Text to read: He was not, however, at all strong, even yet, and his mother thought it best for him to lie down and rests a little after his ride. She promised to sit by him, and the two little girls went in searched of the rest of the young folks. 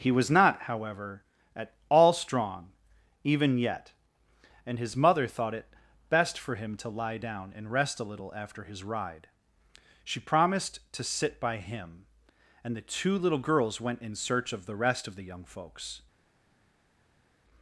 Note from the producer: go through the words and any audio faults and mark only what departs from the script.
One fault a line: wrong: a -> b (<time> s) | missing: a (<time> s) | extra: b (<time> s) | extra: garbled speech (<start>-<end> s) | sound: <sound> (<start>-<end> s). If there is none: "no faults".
wrong: rests -> rest (7.7 s)
wrong: searched -> search (14.2 s)